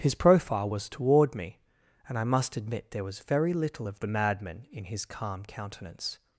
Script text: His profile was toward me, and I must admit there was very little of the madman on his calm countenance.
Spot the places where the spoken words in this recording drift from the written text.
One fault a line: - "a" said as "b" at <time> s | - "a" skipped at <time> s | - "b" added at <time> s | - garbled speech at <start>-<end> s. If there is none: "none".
- "on" said as "in" at 4.7 s